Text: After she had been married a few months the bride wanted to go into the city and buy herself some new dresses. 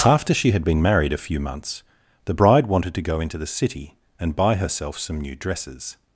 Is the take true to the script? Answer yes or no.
yes